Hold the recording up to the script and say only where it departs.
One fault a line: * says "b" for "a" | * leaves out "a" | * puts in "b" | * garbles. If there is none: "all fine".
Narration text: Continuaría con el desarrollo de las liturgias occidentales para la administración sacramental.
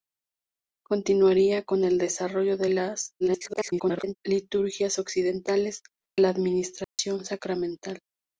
* garbles
* leaves out "para"